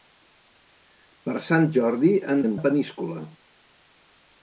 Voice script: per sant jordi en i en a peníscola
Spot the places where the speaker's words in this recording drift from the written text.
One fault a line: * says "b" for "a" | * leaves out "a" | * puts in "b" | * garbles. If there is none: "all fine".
all fine